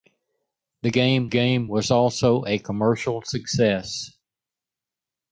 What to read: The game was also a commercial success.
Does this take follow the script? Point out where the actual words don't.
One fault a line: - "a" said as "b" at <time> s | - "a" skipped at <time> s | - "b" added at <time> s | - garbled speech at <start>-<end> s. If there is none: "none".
- "game" added at 1.2 s